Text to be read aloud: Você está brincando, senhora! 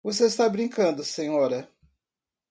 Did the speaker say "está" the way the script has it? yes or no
yes